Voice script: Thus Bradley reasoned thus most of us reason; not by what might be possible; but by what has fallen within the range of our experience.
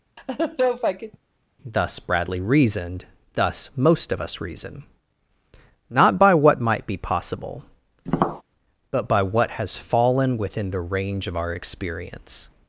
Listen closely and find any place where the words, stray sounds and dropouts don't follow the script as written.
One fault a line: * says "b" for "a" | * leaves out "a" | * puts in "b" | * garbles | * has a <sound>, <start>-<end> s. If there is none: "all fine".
* has a laugh, 0.2-1.2 s
* has a tap, 8.1-8.4 s